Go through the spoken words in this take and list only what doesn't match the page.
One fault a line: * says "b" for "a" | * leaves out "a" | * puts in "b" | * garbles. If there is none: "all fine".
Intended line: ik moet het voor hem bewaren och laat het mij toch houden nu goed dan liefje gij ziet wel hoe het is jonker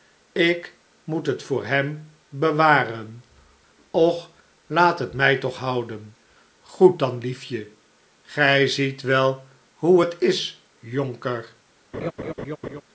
* leaves out "nu"